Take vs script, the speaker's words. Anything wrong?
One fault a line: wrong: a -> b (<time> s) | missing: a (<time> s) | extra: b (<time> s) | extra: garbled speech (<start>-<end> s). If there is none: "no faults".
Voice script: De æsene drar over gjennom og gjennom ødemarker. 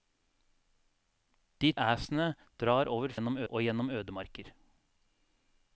no faults